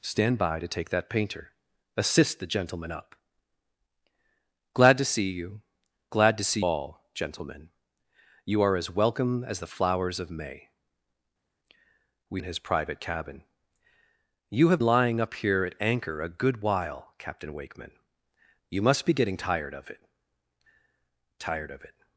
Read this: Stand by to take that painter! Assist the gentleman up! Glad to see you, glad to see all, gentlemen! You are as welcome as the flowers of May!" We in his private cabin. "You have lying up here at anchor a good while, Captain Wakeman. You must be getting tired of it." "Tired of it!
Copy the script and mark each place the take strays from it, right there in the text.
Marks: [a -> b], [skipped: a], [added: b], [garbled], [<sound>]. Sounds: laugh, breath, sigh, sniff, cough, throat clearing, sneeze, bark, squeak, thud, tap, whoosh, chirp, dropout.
Stand by to take that painter! Assist the gentleman up! Glad to see you, glad to see all, gentlemen! You are as welcome as the flowers of May!" We in his private cabin. "You have lying up here at anchor a good while, Captain Wakeman. You must be getting tired of it." "Tired of it!